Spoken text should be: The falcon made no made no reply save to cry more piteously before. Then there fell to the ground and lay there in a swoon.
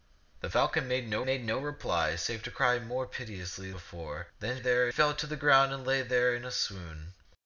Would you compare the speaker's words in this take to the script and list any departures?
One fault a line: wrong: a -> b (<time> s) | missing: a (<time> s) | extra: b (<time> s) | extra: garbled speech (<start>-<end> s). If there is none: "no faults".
no faults